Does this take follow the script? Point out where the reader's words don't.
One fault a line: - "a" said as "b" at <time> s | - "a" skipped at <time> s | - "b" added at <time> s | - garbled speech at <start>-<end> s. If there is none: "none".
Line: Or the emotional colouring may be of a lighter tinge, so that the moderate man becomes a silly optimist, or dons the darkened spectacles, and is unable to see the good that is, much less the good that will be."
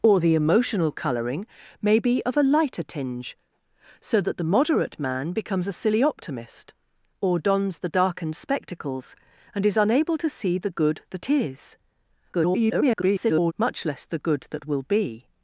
- garbled speech at 12.3-13.5 s